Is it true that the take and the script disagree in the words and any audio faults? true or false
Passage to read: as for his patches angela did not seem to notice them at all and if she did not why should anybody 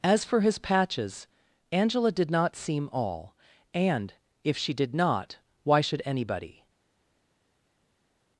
true